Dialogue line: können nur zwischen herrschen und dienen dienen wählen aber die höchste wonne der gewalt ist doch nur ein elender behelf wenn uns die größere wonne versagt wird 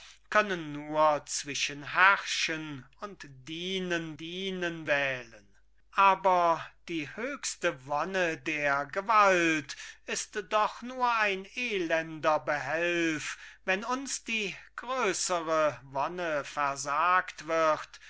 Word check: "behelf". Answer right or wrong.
right